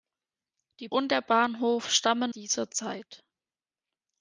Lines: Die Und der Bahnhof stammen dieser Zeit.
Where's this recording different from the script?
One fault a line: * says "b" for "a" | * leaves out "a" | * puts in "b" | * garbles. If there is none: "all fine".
all fine